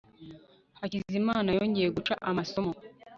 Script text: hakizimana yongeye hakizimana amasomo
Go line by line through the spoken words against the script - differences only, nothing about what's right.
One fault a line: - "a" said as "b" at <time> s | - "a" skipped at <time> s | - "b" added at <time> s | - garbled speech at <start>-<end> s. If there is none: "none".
- "hakizimana" said as "guca" at 1.9 s